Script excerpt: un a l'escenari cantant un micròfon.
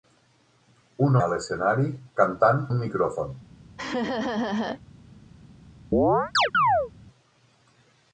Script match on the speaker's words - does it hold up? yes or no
yes